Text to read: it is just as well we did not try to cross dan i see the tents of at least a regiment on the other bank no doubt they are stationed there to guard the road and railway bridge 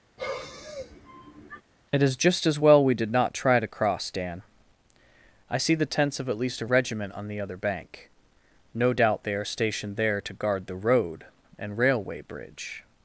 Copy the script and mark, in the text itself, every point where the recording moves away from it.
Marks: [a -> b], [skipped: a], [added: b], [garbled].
it is just as well we did not try to cross dan i see the tents of at least a regiment on the other bank no doubt they are stationed there to guard the road and railway bridge